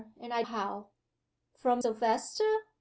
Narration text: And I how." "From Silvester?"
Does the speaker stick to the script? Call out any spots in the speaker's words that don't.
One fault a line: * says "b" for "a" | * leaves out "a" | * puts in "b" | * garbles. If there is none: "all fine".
all fine